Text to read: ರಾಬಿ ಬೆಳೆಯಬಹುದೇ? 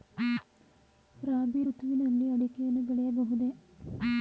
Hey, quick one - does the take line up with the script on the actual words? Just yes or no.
no